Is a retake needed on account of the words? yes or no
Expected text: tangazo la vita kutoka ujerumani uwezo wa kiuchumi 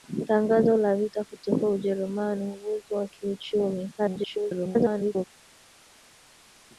yes